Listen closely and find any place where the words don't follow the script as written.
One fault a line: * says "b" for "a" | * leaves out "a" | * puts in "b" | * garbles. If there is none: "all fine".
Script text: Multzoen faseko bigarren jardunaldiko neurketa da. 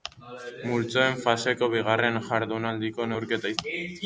all fine